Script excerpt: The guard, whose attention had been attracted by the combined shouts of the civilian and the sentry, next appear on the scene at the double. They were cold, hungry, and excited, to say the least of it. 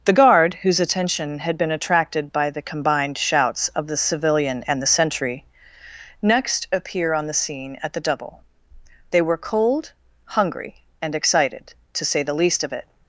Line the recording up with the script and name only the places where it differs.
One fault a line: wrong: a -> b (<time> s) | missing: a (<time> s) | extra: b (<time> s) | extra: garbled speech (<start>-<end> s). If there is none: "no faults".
no faults